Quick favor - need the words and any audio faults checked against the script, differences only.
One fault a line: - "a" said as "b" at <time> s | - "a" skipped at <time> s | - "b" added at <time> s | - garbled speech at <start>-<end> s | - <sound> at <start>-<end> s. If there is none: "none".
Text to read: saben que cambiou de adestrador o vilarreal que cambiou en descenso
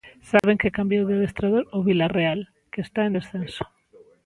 - dropout at 0.4-0.4 s
- "cambiou" said as "está" at 2.9 s